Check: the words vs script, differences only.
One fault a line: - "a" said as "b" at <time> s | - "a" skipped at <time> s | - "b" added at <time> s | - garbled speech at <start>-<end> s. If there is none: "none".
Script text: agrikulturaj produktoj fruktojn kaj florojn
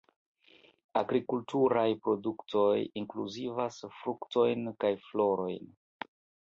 - "inkluzivas" added at 3.0 s